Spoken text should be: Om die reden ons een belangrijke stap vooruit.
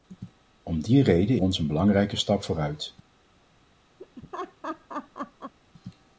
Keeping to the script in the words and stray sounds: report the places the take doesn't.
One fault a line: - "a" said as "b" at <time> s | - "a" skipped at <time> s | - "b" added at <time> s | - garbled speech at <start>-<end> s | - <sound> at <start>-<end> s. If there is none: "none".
- laugh at 4.0-5.5 s